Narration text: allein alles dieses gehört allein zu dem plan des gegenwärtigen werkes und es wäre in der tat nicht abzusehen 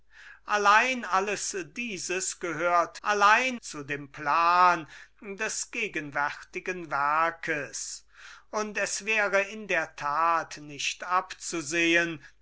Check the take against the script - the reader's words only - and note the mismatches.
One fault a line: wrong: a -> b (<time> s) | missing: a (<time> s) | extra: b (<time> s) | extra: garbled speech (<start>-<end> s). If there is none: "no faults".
no faults